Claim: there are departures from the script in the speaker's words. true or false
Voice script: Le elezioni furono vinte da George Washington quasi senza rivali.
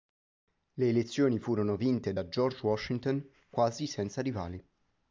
false